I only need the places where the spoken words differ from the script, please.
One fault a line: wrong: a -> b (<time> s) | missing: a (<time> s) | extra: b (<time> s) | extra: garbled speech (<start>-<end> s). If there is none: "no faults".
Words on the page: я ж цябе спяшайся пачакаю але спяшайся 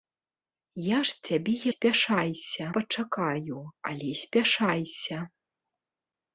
no faults